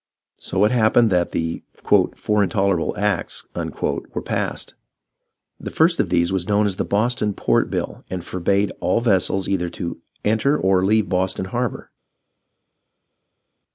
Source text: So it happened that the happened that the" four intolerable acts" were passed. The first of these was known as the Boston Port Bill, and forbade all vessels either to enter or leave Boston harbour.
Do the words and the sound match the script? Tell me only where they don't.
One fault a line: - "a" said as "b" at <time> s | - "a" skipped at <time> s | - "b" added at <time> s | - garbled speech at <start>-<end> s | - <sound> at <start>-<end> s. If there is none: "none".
- "happened that the" skipped at 1.6 s